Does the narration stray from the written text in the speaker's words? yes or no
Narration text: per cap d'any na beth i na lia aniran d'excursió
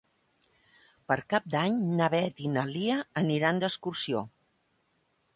no